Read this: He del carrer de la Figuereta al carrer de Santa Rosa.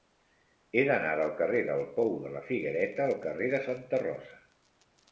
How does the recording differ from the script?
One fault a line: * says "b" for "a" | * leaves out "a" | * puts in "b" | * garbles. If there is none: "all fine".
* puts in "d'anar"
* puts in "del Pou"